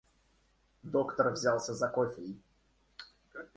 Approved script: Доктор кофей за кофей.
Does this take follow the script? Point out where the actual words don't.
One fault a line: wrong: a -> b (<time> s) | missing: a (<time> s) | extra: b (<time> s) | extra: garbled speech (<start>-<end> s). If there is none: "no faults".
wrong: кофей -> взялся (1.3 s)